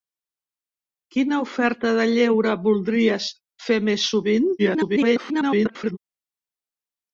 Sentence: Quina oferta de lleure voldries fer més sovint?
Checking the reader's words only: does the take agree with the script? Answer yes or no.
no